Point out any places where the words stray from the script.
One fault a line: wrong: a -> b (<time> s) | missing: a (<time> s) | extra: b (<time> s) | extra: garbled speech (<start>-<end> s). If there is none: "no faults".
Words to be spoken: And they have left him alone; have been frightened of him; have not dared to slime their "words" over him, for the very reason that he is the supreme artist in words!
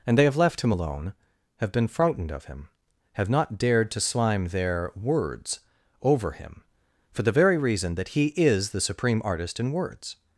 no faults